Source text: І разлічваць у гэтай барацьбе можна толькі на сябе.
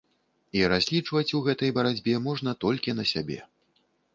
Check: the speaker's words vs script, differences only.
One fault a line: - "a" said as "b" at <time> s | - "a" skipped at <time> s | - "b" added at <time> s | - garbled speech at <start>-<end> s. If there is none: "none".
none